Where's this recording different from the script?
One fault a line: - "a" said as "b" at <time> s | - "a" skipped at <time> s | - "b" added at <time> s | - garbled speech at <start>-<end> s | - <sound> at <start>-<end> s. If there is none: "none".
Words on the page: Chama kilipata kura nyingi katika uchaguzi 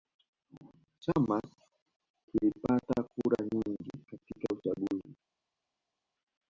none